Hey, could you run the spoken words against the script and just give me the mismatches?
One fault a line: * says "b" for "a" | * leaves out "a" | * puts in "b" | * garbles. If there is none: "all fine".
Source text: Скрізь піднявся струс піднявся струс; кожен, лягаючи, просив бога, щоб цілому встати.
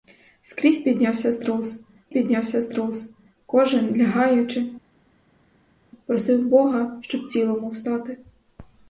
all fine